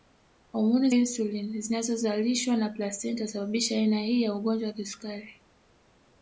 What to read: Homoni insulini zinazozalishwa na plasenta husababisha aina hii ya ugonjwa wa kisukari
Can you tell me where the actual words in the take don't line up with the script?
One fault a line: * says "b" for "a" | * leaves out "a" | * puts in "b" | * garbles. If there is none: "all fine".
all fine